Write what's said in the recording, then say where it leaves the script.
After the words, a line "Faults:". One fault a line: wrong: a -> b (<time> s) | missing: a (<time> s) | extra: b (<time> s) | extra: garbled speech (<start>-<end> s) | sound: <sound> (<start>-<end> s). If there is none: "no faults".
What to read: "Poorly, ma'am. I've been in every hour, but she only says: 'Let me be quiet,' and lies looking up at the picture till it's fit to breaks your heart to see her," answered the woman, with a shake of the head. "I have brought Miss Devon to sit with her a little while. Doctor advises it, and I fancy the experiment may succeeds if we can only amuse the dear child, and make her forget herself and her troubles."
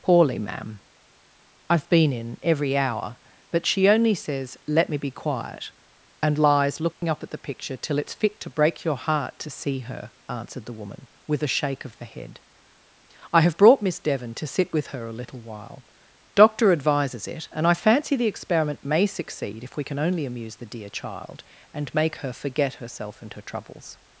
"Poorly, ma'am. I've been in every hour, but she only says: 'Let me be quiet,' and lies looking up at the picture till it's fit to break your heart to see her," answered the woman, with a shake of the head. "I have brought Miss Devon to sit with her a little while. Doctor advises it, and I fancy the experiment may succeed if we can only amuse the dear child, and make her forget herself and her troubles."
Faults:
sound: dropout (6.9-7.0 s)
wrong: breaks -> break (8.5 s)
wrong: succeeds -> succeed (19.1 s)